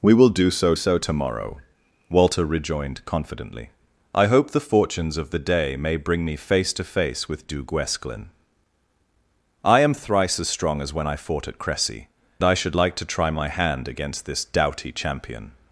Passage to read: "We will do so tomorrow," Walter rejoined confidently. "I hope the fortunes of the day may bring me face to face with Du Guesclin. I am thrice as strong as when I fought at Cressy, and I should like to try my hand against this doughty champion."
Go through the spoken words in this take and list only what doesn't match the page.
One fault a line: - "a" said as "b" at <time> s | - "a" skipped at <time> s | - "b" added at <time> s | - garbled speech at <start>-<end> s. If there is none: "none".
- "so" added at 0.7 s
- "and" skipped at 12.1 s